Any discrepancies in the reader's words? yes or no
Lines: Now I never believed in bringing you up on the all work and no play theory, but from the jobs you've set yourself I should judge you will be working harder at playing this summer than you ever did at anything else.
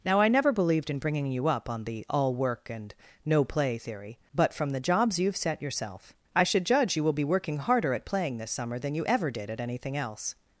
no